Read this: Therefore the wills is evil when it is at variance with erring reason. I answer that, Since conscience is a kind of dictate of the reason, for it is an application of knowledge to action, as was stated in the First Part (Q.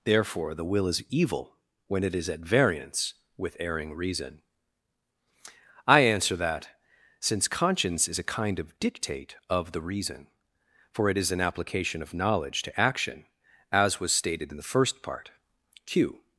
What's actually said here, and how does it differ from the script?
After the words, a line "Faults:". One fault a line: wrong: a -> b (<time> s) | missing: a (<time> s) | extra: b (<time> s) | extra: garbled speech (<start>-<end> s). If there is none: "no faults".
Therefore the will is evil when it is at variance with erring reason. I answer that, Since conscience is a kind of dictate of the reason, for it is an application of knowledge to action, as was stated in the First Part (Q.
Faults:
wrong: wills -> will (0.7 s)